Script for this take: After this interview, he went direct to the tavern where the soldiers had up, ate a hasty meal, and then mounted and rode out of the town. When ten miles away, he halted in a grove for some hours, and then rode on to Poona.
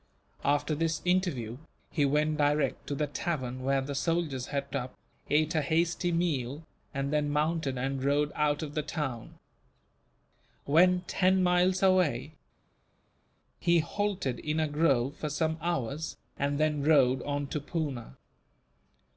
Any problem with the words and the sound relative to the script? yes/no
no